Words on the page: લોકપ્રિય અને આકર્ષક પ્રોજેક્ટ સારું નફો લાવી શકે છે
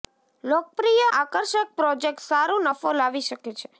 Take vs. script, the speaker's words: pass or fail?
fail